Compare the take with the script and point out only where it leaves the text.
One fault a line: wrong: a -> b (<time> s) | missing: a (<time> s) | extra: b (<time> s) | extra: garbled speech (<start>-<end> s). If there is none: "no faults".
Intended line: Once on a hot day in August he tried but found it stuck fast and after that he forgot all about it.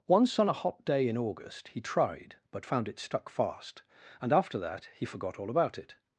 no faults